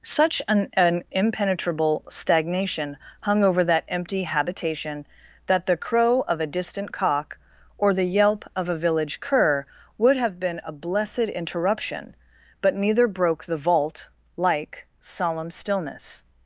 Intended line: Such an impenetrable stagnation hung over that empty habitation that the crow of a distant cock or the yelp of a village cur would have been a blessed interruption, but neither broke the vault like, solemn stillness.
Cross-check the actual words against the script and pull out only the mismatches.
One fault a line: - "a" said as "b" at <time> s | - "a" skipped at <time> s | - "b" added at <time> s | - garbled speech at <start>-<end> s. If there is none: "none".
- "an" added at 0.7 s